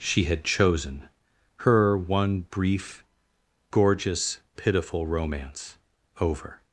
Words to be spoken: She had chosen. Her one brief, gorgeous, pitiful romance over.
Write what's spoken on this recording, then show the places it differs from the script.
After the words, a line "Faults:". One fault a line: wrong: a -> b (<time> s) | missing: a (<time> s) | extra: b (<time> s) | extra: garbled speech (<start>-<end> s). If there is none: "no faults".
She had chosen. Her one brief, gorgeous, pitiful romance over.
Faults:
no faults